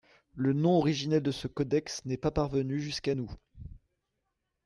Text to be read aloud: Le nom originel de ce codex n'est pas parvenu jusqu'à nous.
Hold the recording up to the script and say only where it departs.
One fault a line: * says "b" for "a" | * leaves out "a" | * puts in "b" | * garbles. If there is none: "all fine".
all fine